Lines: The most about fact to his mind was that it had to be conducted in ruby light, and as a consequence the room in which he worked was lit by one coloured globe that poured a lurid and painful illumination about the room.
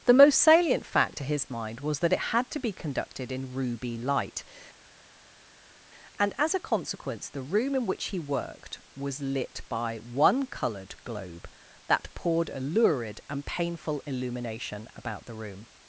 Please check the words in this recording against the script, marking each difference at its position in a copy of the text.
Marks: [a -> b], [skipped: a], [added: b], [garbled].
The most [about -> salient] fact to his mind was that it had to be conducted in ruby light, and as a consequence the room in which he worked was lit by one coloured globe that poured a lurid and painful illumination about the room.